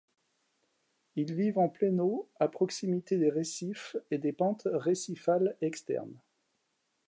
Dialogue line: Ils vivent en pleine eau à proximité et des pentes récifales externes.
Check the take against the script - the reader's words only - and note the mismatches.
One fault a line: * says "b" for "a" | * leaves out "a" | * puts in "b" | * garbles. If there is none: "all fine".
* puts in "des récifs"